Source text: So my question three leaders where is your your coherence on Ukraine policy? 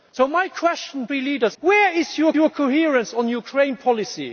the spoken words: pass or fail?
pass